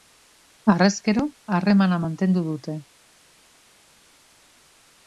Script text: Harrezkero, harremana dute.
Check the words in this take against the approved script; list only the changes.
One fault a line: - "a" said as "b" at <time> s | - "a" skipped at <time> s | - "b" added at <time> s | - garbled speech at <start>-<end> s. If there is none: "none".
- "mantendu" added at 2.0 s